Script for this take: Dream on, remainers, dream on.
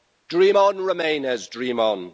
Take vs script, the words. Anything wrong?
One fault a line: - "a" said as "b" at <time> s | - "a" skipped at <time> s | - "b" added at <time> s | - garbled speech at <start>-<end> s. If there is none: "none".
none